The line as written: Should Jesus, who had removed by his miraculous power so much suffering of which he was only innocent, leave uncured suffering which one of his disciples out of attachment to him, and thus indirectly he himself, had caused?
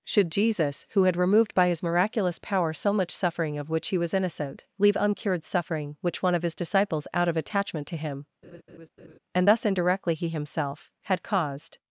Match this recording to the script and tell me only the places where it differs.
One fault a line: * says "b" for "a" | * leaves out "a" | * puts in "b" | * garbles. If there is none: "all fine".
* leaves out "only"